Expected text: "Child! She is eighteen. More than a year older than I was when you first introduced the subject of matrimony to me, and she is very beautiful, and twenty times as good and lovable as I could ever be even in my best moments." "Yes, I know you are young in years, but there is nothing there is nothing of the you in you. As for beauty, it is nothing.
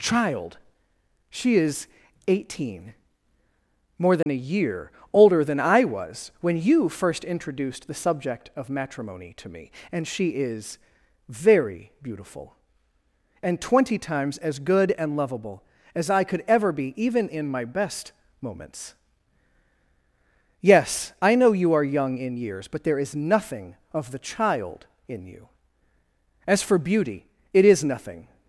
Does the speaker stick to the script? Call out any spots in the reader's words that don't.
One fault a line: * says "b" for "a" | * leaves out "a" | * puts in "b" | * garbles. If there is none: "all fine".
* leaves out "there is nothing"
* says "child" for "you"